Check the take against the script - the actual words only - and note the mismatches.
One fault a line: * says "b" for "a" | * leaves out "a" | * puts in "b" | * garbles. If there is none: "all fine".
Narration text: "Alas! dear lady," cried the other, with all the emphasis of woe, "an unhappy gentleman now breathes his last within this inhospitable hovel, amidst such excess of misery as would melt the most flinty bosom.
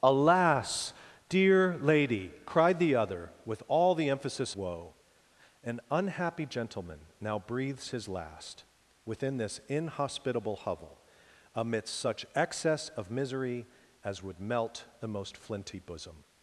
* leaves out "of"